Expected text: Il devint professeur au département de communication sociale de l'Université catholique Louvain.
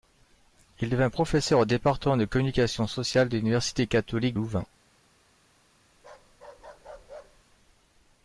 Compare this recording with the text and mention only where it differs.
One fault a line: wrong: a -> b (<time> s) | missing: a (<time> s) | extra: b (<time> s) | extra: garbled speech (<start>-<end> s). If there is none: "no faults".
no faults